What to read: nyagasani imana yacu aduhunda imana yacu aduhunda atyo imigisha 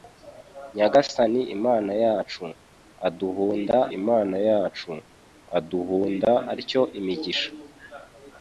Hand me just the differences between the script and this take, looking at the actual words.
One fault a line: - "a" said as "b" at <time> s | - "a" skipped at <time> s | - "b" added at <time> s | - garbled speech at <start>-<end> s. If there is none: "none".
none